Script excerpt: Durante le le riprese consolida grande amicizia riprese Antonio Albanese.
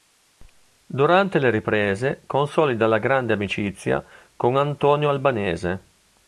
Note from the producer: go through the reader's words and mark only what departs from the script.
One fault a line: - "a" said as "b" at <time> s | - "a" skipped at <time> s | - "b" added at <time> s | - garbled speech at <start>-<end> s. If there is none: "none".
- "le" skipped at 1.5 s
- "la" added at 2.9 s
- "riprese" said as "con" at 4.4 s